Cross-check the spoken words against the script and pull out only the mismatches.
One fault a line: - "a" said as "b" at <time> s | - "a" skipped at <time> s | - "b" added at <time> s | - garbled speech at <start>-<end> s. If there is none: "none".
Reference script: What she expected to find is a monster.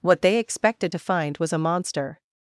- "she" said as "they" at 0.2 s
- "is" said as "was" at 1.4 s